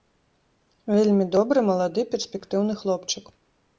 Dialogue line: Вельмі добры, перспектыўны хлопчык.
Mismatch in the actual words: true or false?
true